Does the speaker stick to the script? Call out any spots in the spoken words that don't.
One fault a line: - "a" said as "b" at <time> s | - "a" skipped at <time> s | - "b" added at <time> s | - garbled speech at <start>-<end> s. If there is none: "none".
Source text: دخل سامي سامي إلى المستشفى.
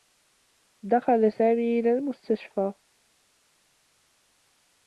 - "سامي" skipped at 1.8 s